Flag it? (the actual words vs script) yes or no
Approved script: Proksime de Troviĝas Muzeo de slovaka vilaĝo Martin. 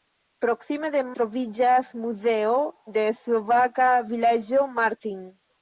no